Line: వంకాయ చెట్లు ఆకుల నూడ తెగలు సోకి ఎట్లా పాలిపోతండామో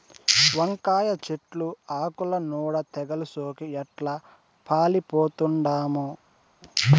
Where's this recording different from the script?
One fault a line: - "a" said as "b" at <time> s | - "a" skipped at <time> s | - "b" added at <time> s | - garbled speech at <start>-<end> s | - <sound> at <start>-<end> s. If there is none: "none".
none